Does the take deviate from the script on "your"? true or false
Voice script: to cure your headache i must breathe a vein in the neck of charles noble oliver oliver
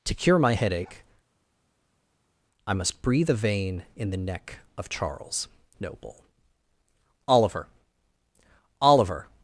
true